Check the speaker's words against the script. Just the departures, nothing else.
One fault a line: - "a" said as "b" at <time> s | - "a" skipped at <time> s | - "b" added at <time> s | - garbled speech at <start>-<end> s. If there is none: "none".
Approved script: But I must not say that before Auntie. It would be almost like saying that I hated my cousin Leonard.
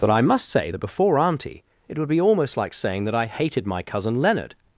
- "not" skipped at 0.5 s